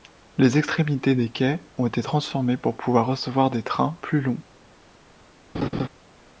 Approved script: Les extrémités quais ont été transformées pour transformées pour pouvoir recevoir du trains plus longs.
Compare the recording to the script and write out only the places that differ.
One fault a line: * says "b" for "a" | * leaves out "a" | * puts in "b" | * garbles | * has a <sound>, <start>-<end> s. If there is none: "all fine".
* puts in "des"
* leaves out "transformées pour"
* says "des" for "du"
* has a laugh, 5.5-5.9 s